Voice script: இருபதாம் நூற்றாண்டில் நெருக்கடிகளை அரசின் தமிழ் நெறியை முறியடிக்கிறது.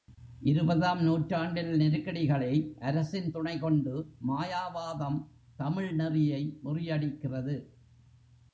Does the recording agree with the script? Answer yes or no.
no